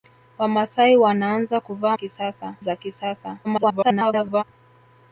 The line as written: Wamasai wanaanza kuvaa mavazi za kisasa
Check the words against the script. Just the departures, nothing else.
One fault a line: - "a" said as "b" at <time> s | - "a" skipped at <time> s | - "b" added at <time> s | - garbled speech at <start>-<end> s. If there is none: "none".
- "mavazi" said as "kisasa" at 1.9 s
- garbled speech at 3.4-4.4 s